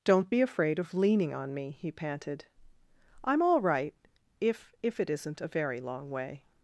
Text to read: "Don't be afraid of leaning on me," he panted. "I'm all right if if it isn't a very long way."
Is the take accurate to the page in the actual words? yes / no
yes